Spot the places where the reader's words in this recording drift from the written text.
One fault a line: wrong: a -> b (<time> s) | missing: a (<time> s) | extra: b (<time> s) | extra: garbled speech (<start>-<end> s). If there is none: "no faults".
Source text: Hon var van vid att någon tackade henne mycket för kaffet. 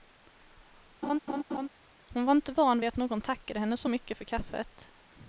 extra: inte (2.3 s)
extra: så (3.8 s)